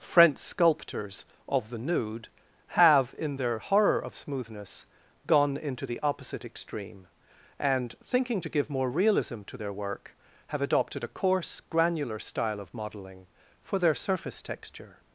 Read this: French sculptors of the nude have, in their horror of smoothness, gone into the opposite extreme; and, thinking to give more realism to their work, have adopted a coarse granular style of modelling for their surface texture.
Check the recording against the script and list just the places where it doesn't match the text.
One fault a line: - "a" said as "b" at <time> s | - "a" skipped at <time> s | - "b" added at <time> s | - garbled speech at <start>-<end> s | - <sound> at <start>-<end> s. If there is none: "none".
none